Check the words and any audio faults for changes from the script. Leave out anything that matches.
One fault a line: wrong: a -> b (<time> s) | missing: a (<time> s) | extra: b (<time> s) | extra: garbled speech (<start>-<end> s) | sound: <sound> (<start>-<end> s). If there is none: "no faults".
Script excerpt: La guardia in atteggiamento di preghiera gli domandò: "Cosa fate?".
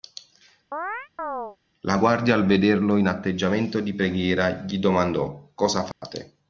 sound: chirp (0.7-1.6 s)
extra: al vederlo (2.3 s)
sound: dropout (5.9-6.0 s)